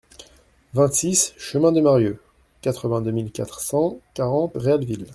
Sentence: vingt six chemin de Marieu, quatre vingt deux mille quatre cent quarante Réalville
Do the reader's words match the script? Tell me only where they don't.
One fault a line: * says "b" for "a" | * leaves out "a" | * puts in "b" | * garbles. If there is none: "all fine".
all fine